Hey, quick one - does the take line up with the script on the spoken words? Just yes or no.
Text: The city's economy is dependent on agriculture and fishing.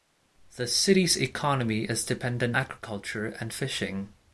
no